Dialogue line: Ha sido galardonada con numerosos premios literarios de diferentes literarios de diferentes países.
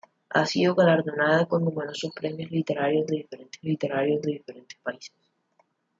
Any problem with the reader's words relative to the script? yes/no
no